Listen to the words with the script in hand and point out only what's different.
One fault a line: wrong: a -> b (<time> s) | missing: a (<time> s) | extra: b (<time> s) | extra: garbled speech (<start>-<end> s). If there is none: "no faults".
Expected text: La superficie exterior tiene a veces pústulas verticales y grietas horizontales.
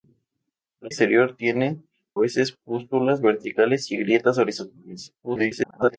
missing: superficie (0.9 s)
missing: a (1.8 s)
extra: garbled speech (5.2-6.0 s)